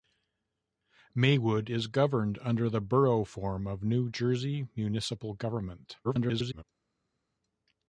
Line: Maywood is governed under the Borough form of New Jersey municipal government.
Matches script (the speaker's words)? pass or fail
fail